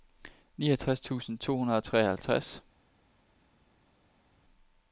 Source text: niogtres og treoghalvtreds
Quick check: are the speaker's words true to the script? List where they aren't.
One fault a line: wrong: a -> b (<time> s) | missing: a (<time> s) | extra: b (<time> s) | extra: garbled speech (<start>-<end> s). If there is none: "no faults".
extra: tusind to hundrede (1.0 s)